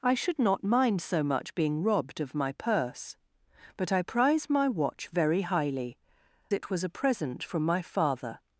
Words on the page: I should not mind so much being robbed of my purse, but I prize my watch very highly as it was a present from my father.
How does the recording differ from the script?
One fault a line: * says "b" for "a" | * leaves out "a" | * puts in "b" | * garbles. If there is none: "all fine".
* leaves out "as"